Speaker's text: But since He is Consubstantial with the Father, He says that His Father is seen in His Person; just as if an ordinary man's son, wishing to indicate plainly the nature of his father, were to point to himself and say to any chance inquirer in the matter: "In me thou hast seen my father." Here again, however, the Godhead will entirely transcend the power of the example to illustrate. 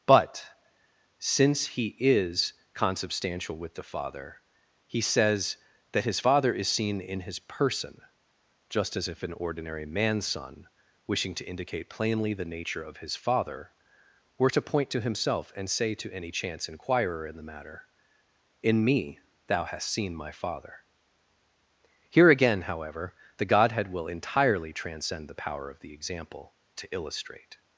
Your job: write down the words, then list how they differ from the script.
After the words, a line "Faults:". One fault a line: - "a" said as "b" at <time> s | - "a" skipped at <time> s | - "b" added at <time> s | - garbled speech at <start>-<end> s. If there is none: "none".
But since He is Consubstantial with the Father, He says that His Father is seen in His Person; just as if an ordinary man's son, wishing to indicate plainly the nature of his father, were to point to himself and say to any chance inquirer in the matter: "In me thou hast seen my father." Here again, however, the Godhead will entirely transcend the power of the example to illustrate.
Faults:
none